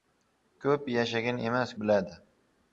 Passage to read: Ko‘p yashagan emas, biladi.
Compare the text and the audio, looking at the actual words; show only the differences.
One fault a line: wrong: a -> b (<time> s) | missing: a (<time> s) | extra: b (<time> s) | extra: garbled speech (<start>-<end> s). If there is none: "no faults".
no faults